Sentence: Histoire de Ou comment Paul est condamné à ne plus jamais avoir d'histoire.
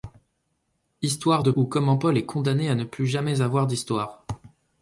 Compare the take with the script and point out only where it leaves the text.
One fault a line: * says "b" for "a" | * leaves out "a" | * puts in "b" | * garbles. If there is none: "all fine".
all fine